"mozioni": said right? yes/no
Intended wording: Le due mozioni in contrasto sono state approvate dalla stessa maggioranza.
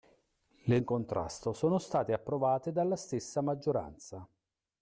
no